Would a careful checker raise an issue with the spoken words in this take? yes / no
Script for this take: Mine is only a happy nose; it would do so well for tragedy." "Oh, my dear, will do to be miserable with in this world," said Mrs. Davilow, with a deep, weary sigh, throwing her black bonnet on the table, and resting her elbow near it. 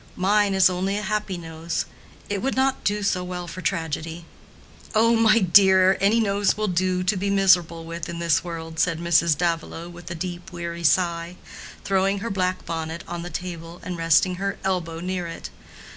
yes